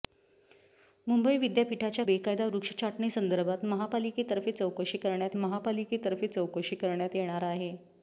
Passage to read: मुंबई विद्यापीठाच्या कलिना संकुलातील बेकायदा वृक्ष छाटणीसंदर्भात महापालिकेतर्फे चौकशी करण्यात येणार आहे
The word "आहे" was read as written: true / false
true